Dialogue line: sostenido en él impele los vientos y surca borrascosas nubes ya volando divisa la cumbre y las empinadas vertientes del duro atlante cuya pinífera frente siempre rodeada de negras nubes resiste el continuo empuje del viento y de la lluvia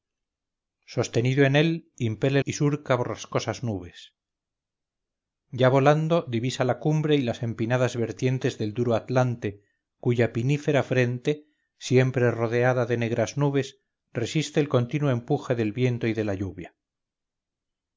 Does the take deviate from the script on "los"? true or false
true